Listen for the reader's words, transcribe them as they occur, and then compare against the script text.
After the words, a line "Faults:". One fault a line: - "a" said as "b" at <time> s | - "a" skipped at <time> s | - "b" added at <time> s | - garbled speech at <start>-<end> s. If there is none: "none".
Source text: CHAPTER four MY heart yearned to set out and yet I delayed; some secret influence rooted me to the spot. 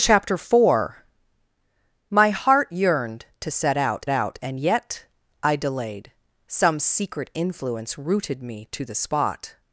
CHAPTER four MY heart yearned to set out out and yet I delayed; some secret influence rooted me to the spot.
Faults:
- "out" added at 4.1 s